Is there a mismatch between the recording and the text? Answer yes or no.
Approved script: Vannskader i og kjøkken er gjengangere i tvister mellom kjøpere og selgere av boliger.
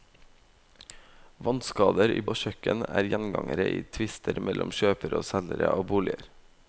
no